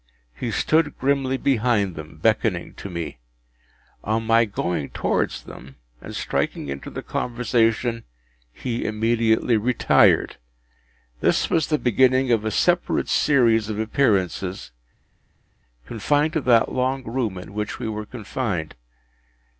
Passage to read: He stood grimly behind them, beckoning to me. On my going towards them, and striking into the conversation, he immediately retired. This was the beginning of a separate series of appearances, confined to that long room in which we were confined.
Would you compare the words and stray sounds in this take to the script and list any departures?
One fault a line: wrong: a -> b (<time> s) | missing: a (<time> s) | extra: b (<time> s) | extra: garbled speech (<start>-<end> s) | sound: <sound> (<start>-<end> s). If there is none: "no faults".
no faults